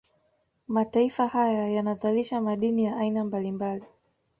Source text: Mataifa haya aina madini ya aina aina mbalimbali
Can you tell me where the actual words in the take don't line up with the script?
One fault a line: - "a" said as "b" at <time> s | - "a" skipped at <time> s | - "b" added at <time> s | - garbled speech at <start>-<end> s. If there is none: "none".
- "aina" said as "yanazalisha" at 1.7 s
- "aina" skipped at 3.2 s